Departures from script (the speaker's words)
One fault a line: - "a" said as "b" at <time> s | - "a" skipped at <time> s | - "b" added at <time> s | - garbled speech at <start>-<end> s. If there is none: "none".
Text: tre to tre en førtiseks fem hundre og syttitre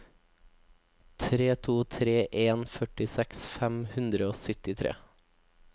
none